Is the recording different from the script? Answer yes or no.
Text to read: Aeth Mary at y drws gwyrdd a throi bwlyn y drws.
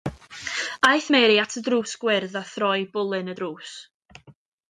no